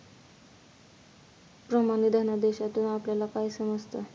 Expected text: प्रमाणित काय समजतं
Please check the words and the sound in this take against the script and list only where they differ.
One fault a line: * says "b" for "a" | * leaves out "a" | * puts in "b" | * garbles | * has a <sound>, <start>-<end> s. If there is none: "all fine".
* puts in "धनादेशातून आपल्याला"